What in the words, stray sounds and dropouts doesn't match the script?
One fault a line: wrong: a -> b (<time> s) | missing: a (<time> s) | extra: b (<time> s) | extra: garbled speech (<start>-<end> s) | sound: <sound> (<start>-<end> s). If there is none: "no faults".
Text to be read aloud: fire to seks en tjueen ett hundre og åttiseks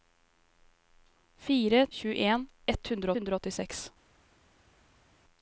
missing: to seks en (1.9 s)
extra: hundre (3.2 s)